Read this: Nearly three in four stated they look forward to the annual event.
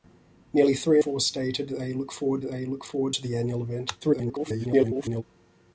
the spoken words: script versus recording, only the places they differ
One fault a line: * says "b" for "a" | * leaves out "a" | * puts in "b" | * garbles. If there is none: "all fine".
* leaves out "in"
* puts in "they look forward"
* garbles